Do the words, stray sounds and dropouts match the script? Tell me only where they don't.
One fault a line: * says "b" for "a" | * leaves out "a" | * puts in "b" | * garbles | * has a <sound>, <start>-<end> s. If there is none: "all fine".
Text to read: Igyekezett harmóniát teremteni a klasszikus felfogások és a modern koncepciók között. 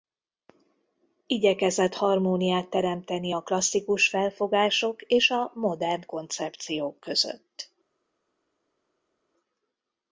all fine